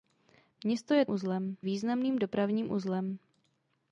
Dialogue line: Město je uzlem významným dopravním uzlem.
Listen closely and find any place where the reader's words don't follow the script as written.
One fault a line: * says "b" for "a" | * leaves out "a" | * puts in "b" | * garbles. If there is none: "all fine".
all fine